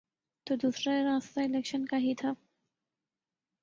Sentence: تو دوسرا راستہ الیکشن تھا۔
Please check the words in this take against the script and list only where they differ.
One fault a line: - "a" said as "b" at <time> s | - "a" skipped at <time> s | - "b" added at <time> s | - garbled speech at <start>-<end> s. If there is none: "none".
- "کا ہی" added at 1.9 s